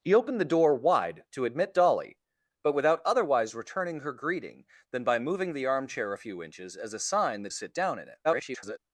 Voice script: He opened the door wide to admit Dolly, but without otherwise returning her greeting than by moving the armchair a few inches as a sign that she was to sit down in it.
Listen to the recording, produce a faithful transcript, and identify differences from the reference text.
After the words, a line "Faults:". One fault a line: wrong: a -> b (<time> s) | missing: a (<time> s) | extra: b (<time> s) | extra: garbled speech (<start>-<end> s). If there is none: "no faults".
He opened the door wide to admit Dolly, but without otherwise returning her greeting than by moving the armchair a few inches as a sign that sit down in it. [garbled]
Faults:
missing: she was to (7.5 s)
extra: garbled speech (8.2-8.8 s)